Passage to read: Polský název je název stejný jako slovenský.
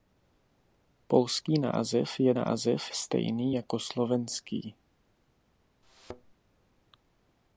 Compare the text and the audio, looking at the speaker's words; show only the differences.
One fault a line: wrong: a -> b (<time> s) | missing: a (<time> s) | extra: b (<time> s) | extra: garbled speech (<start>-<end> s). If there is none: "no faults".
no faults